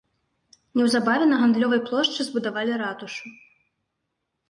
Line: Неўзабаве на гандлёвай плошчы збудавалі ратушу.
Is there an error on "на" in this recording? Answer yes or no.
no